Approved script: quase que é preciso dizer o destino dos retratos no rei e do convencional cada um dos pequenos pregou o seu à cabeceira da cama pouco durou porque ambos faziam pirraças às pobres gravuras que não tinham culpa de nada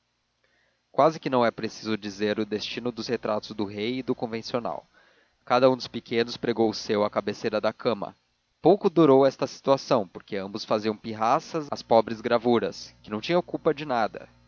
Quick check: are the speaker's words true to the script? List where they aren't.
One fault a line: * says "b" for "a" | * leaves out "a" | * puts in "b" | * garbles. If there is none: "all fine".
* puts in "não"
* says "do" for "no"
* puts in "esta situação"